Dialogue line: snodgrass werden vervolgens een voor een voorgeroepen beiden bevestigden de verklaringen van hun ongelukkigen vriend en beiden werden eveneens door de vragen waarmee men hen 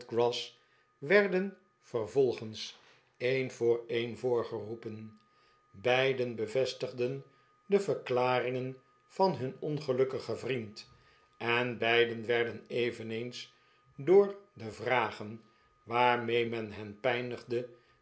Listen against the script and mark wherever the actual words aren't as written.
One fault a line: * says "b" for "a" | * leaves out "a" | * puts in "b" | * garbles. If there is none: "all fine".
all fine